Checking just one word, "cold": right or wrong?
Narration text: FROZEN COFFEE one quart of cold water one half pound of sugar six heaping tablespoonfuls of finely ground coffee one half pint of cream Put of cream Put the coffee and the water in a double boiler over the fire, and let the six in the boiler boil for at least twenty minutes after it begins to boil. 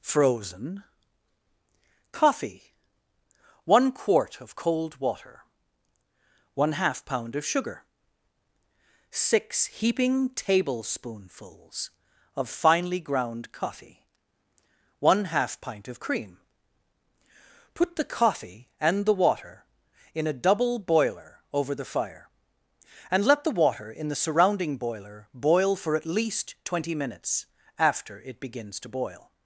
right